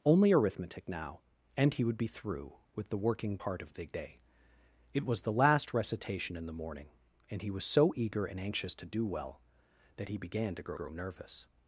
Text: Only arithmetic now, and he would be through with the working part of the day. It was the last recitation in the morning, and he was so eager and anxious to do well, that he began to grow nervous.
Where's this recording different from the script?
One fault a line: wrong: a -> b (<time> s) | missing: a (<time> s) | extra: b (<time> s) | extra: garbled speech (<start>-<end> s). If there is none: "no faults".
extra: grow (10.7 s)